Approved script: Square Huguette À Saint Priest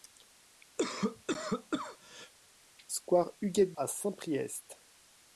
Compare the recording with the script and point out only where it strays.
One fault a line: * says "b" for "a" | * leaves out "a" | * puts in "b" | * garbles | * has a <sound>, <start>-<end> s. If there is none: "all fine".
* has a cough, 0.8-2.3 s